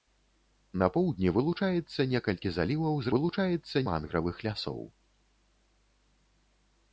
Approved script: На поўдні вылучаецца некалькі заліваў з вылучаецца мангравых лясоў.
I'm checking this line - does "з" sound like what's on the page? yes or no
yes